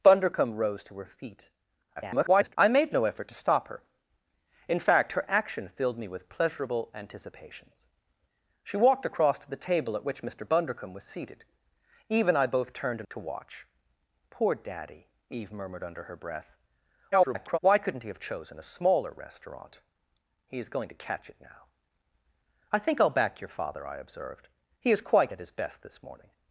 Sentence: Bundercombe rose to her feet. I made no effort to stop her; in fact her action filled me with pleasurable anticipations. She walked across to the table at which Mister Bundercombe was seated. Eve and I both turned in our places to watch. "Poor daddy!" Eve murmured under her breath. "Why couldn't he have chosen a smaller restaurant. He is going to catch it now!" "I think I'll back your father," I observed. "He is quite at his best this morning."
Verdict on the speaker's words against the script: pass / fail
fail